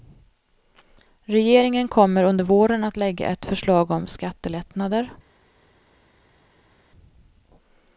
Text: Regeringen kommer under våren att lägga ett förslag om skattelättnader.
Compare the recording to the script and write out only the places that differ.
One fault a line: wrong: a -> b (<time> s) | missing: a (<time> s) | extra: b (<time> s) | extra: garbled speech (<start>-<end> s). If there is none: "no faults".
no faults